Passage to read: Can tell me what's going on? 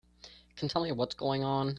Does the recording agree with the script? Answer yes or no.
yes